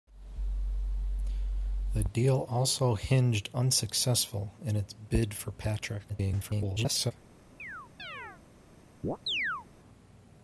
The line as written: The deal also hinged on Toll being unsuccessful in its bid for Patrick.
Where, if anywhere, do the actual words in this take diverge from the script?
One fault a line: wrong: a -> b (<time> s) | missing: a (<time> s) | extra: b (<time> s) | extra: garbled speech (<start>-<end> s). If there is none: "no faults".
missing: on Toll being (3.5 s)
extra: garbled speech (6.1-7.1 s)